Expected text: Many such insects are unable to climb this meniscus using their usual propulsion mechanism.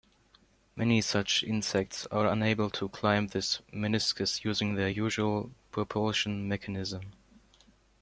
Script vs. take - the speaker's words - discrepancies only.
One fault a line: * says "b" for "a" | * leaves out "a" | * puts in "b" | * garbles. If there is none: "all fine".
all fine